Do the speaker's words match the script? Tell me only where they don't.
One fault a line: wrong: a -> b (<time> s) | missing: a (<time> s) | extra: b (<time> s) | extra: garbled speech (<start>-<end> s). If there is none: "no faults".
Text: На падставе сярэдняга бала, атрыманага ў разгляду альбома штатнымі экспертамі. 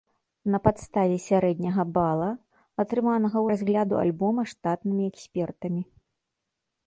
no faults